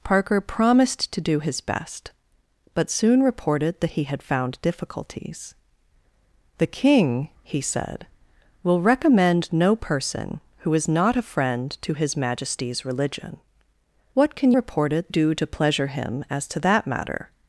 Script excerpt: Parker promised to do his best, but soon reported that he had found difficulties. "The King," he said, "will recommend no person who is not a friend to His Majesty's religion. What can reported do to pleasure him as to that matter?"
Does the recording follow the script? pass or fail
pass